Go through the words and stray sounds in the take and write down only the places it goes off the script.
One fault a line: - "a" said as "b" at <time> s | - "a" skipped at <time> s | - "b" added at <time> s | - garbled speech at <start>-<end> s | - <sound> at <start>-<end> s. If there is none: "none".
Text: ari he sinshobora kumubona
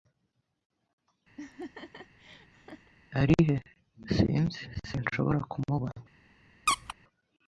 - laugh at 1.4-2.9 s
- "sinzi" added at 4.1 s
- squeak at 6.7-6.9 s